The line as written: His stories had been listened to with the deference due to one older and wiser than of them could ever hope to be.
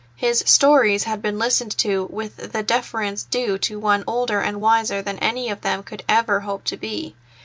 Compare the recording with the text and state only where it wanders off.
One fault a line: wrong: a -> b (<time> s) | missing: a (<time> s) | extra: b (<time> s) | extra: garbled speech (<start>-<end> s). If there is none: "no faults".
extra: any (5.2 s)